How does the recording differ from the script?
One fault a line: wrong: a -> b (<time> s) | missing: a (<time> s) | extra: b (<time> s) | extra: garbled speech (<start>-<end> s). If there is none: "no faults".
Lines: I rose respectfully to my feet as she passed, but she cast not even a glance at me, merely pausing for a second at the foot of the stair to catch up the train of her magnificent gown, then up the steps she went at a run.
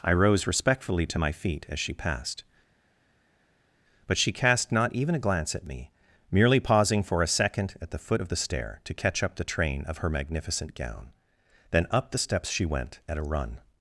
no faults